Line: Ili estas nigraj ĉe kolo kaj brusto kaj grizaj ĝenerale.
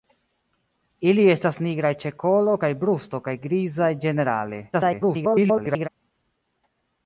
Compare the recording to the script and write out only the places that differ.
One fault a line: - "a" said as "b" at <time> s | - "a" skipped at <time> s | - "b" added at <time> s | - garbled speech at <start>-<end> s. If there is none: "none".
- garbled speech at 4.7-5.9 s